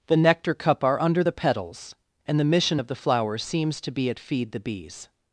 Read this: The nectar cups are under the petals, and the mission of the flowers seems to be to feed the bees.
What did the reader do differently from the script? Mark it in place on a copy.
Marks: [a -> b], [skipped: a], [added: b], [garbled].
The nectar [cups -> cup] are under the petals, and the mission of the flowers seems to be [to -> at] feed the bees.